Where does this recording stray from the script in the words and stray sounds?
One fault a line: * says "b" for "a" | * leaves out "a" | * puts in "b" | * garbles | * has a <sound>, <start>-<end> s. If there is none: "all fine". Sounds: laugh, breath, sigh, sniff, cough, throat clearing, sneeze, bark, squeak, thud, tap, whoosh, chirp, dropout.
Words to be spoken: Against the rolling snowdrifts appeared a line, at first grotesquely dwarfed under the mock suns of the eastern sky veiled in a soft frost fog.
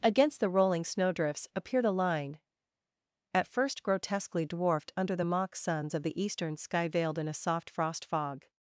all fine